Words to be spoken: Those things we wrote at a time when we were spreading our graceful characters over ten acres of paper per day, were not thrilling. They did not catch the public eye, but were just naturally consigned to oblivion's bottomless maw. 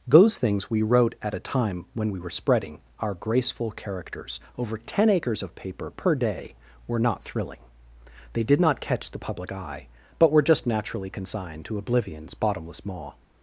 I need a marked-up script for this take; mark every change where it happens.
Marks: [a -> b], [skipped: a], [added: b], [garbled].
Those things we wrote at a time when we were spreading our graceful characters over ten acres of paper per day, were not thrilling. They did not catch the public eye, but were just naturally consigned to oblivion's bottomless maw.